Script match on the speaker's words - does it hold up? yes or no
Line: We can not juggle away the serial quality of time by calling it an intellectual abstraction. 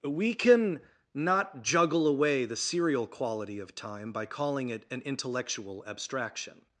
yes